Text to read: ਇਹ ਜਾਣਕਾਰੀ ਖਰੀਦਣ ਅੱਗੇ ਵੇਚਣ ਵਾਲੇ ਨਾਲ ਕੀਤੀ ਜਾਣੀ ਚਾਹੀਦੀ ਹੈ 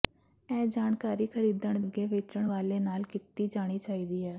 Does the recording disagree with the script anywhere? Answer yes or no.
no